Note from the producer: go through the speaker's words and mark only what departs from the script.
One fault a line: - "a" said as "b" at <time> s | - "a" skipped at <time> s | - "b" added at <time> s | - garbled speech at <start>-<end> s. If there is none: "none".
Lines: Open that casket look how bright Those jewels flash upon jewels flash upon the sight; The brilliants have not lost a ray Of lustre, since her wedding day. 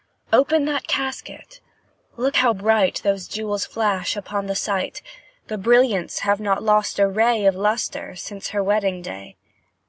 - "jewels flash upon" skipped at 4.4 s